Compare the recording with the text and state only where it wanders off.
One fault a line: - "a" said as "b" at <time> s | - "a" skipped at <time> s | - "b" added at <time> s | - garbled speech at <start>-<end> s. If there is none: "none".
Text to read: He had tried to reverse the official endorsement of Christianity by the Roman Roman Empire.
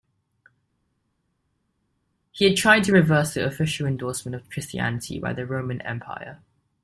- "Roman" skipped at 5.8 s